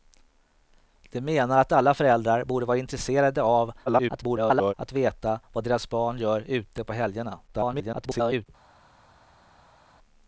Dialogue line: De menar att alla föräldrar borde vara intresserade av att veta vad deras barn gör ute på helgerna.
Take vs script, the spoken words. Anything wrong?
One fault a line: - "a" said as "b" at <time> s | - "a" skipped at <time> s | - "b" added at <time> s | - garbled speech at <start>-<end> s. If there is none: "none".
- garbled speech at 3.9-4.7 s
- garbled speech at 7.5-8.5 s